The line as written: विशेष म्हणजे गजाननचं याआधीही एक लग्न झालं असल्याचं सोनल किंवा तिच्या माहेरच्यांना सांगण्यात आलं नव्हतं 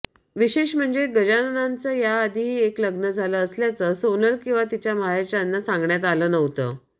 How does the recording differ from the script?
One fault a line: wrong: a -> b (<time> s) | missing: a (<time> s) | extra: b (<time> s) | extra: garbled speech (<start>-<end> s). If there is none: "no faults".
no faults